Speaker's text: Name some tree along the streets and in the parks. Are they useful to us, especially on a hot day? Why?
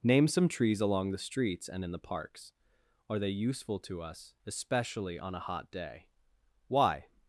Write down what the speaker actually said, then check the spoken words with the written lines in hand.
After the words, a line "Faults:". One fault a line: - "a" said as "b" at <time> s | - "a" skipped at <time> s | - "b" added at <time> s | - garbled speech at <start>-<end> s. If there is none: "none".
Name some trees along the streets and in the parks. Are they useful to us, especially on a hot day? Why?
Faults:
- "tree" said as "trees" at 0.5 s